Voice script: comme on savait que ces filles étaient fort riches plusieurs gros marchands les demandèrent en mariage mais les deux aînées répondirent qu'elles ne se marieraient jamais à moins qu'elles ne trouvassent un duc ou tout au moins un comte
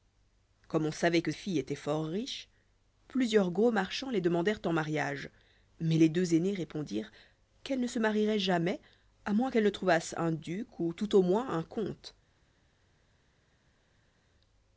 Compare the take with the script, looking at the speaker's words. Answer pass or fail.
fail